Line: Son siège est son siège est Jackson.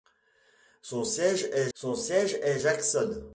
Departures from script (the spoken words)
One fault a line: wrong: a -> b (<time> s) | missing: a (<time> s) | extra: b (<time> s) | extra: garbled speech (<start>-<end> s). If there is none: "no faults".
no faults